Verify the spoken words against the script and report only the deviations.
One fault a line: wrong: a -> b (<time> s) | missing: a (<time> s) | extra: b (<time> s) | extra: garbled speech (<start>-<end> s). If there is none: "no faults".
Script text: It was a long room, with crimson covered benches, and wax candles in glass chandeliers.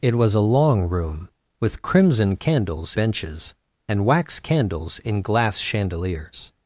wrong: covered -> candles (2.4 s)